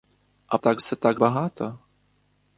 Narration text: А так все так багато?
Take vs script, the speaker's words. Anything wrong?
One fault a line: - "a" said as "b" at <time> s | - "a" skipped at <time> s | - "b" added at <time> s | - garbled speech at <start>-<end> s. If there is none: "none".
none